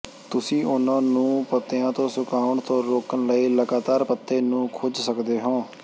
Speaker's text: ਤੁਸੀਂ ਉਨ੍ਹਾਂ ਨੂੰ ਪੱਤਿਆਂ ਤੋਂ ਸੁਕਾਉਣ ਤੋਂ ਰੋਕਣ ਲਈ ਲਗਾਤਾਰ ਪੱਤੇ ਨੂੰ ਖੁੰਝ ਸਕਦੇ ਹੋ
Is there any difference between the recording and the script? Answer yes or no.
no